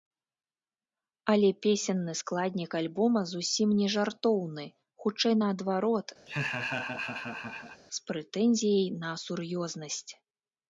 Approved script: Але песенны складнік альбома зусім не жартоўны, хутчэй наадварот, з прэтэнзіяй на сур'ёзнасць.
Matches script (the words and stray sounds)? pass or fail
fail